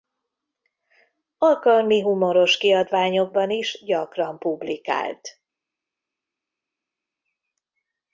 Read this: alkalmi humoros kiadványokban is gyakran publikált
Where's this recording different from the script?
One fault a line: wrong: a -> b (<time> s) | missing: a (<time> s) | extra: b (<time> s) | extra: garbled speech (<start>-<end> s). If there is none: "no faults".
no faults